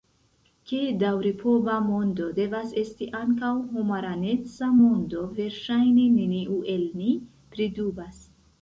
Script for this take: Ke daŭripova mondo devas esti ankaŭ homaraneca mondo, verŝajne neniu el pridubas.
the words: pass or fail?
fail